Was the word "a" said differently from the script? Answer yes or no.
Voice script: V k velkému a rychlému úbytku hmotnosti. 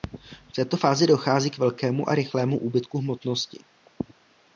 no